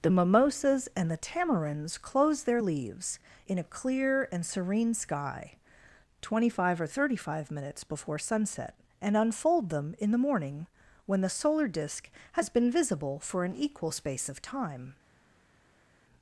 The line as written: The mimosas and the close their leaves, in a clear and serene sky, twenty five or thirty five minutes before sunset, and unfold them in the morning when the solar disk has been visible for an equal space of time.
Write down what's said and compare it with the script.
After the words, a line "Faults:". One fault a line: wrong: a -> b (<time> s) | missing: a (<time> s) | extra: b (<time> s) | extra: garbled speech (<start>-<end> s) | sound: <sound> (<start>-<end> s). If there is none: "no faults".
The mimosas and the tamarinds close their leaves, in a clear and serene sky, twenty five or thirty five minutes before sunset, and unfold them in the morning when the solar disk has been visible for an equal space of time.
Faults:
extra: tamarinds (1.2 s)